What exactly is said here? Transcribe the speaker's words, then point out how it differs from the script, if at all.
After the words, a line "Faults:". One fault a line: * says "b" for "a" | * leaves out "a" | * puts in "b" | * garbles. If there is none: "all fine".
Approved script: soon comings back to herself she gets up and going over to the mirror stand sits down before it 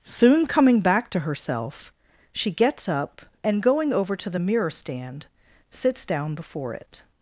soon coming back to herself she gets up and going over to the mirror stand sits down before it
Faults:
* says "coming" for "comings"